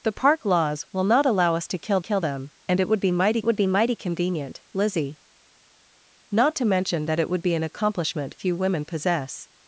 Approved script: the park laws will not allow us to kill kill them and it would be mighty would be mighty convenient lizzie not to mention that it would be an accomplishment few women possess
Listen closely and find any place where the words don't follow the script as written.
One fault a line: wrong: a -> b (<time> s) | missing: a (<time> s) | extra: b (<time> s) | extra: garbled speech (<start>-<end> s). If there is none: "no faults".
no faults